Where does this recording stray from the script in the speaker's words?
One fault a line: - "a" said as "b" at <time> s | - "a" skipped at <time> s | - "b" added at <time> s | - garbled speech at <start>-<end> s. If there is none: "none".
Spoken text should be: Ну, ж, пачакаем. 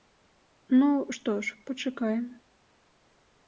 - "што" added at 1.1 s